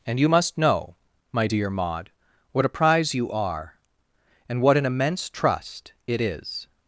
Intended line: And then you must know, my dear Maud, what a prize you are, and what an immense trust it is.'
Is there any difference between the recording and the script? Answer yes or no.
yes